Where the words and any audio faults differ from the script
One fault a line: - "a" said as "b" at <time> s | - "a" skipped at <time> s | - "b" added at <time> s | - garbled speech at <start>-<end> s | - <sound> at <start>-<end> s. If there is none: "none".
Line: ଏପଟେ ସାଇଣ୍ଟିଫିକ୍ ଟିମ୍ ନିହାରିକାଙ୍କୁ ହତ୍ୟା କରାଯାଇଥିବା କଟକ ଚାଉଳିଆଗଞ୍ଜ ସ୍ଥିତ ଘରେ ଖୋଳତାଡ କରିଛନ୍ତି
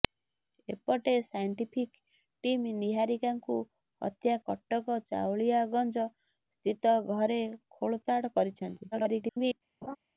- "କରାଯାଇଥିବା" skipped at 4.4 s
- garbled speech at 8.9-9.6 s
- laugh at 9.8-10.0 s